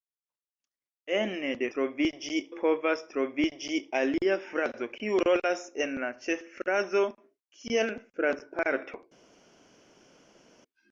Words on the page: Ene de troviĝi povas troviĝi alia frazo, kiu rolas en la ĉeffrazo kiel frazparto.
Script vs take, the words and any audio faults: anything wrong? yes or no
no